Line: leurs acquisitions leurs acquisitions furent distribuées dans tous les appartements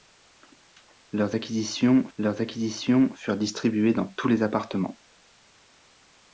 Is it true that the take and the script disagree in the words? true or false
false